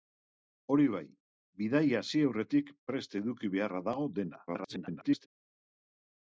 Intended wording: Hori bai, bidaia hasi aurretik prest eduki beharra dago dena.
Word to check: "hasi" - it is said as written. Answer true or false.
true